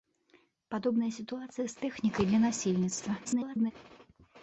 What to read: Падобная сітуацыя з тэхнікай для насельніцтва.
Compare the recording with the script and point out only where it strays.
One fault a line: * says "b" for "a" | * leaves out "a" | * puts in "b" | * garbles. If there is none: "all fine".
* garbles